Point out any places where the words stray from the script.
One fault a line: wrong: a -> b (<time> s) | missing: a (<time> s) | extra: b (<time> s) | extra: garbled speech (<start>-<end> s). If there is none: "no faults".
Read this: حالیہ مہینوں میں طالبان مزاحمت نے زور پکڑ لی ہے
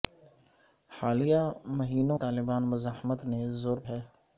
missing: میں (2.2 s)
missing: پکڑ لی (3.8 s)